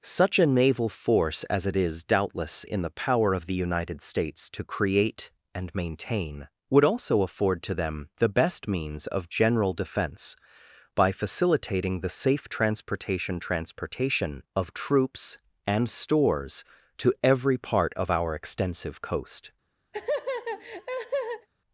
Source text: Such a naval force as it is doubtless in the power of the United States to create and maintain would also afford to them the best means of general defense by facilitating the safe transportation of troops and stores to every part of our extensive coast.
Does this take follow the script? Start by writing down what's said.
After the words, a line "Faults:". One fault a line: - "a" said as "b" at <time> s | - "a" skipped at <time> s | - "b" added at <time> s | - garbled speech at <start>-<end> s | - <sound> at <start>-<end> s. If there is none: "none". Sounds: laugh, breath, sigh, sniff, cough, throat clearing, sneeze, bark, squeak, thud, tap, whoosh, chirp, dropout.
Such a naval force as it is doubtless in the power of the United States to create and maintain would also afford to them the best means of general defense by facilitating the safe transportation transportation of troops and stores to every part of our extensive coast.
Faults:
- "transportation" added at 13.4 s
- laugh at 19.9-21.5 s